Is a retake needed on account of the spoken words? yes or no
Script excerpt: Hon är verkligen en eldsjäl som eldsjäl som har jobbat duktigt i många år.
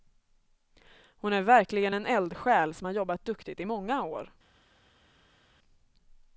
yes